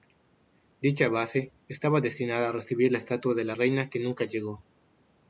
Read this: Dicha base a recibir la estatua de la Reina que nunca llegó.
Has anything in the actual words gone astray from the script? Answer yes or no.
yes